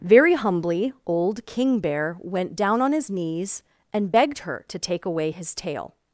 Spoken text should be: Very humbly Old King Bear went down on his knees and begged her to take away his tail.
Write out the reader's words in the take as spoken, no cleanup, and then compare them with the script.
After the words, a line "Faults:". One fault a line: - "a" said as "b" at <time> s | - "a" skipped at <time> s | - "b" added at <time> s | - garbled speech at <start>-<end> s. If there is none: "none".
Very humbly Old King Bear went down on his knees and begged her to take away his tail.
Faults:
none